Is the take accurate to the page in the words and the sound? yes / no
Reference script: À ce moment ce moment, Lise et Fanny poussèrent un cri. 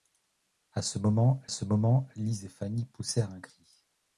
yes